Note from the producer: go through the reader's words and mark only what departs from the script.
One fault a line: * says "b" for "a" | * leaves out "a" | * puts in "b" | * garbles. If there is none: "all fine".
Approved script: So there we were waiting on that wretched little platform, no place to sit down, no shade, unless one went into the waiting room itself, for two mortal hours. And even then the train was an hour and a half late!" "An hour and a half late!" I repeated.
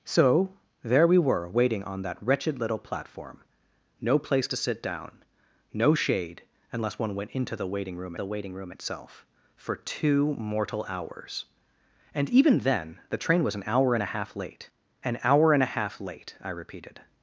* puts in "the waiting room"